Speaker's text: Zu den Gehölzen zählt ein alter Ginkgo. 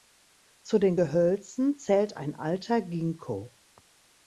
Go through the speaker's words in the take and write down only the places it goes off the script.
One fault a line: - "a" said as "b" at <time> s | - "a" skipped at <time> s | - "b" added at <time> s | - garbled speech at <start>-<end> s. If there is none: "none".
none